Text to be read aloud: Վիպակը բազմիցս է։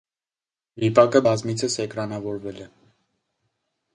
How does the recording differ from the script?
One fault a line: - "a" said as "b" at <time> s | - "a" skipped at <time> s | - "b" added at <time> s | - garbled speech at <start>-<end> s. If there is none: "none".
- "էկրանավորվել" added at 1.9 s